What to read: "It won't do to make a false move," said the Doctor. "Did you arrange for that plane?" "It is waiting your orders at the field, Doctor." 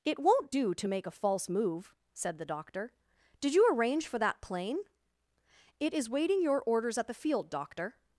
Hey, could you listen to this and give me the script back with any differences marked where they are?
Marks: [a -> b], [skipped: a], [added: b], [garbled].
"It won't do to make a false move," said the Doctor. "Did you arrange for that plane?" "It is waiting your orders at the field, Doctor."